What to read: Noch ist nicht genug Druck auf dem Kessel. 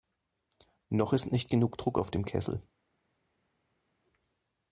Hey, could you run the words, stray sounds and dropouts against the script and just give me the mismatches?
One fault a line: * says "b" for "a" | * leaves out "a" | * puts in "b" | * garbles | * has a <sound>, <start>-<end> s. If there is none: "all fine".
all fine